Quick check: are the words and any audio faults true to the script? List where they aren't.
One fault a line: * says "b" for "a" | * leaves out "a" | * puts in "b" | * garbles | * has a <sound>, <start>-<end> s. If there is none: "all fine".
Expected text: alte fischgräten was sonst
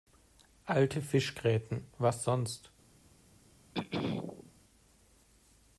* has a throat clearing, 3.7-4.5 s